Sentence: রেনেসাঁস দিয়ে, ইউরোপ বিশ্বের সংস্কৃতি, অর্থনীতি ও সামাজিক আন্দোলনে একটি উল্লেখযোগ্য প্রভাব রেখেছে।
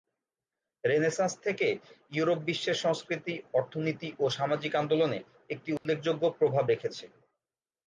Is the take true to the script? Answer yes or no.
no